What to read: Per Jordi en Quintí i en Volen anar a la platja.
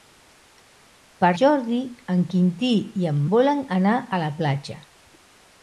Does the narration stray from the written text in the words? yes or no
no